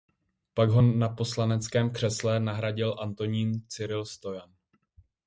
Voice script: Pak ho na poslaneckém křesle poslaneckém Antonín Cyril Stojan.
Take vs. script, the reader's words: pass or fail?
fail